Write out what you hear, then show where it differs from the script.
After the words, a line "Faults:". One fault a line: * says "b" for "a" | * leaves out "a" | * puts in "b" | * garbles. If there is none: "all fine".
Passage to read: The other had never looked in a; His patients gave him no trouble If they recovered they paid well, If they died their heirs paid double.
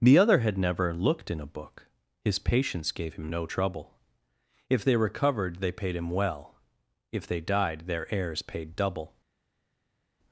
The other had never looked in a book; His patients gave him no trouble If they recovered they paid him well, If they died their heirs paid double.
Faults:
* puts in "book"
* puts in "him"